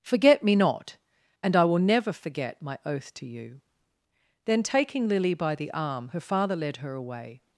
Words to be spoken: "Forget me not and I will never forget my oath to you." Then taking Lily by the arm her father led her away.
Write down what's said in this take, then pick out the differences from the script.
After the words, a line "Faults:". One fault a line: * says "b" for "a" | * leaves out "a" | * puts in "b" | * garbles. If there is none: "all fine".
"Forget me not and I will never forget my oath to you." Then taking Lily by the arm her father led her away.
Faults:
all fine